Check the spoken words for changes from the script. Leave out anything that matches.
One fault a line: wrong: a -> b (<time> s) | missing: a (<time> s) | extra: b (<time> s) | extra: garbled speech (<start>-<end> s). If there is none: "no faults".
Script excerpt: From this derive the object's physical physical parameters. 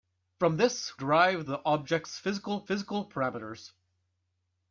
no faults